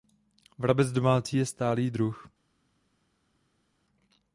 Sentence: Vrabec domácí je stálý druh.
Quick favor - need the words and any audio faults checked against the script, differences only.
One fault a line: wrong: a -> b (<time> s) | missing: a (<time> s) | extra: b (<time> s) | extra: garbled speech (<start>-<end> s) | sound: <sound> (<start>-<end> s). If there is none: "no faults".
no faults